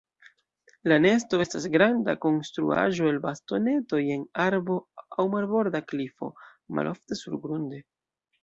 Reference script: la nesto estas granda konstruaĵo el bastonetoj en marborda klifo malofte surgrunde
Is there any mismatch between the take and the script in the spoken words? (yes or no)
yes